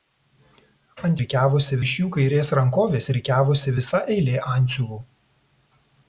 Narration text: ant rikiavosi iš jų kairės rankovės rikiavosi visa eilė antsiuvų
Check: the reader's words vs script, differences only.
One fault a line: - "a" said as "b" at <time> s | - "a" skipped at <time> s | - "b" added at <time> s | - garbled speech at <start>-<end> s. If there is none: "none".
none